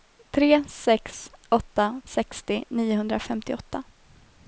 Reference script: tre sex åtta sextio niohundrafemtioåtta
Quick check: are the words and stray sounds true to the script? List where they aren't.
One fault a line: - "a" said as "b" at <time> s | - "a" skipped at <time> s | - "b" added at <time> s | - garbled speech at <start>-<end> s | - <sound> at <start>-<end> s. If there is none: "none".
none